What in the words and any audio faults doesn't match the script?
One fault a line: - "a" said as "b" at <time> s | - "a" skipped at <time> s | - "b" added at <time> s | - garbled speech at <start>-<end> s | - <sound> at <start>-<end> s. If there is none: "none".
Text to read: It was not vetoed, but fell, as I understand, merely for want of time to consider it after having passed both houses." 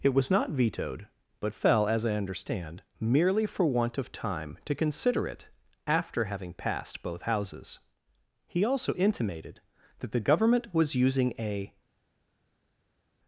- "He also intimated that the Government was using a" added at 8.5 s